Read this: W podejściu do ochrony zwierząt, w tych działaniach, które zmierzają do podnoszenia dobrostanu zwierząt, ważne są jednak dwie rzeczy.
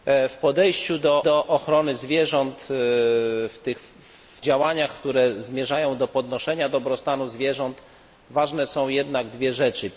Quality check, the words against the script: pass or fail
fail